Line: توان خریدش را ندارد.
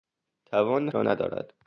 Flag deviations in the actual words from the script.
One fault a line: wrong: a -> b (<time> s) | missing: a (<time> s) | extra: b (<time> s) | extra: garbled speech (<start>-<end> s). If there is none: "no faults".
missing: خریدش (0.9 s)